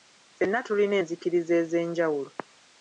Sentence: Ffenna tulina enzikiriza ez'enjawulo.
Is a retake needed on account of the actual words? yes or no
no